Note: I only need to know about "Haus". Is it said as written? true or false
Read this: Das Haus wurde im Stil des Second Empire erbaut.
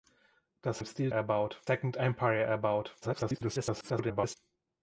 false